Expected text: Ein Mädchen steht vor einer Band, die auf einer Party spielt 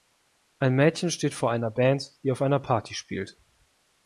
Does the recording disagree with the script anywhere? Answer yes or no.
no